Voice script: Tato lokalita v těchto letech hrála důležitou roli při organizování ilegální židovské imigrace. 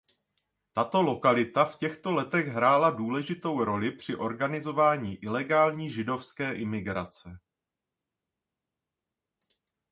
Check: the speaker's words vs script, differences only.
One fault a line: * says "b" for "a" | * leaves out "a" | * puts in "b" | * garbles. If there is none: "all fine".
all fine